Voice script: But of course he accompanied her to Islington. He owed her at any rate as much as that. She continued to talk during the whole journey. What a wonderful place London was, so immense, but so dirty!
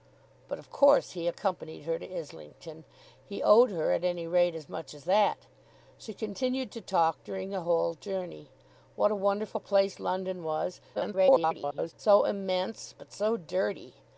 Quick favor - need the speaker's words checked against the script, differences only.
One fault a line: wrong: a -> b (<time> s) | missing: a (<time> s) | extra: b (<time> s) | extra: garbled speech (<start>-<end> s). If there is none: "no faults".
extra: garbled speech (10.9-11.9 s)